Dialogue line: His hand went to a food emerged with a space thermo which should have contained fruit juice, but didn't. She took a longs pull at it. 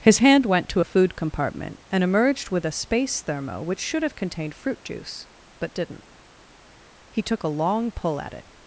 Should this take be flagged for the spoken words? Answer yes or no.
yes